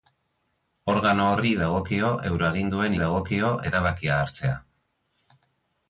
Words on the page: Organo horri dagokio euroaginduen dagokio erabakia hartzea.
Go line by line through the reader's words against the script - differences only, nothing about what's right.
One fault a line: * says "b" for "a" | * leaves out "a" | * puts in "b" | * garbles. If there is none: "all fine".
all fine